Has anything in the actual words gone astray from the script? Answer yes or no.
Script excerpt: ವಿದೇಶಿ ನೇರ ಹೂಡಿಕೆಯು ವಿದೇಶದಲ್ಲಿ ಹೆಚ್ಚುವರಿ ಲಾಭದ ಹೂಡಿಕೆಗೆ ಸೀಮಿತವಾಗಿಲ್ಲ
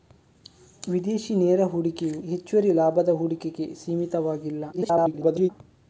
yes